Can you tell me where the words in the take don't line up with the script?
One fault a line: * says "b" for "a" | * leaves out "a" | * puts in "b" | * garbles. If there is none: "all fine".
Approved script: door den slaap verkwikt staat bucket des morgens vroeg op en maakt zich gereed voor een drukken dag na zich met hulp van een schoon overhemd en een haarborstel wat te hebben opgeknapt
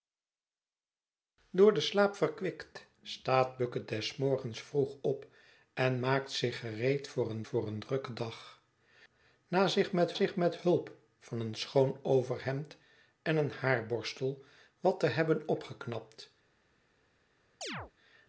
* puts in "voor een"
* puts in "zich met"